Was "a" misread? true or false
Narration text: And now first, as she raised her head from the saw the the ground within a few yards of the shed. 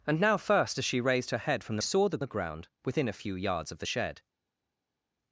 false